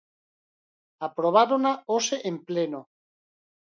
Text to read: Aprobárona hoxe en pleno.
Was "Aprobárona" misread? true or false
false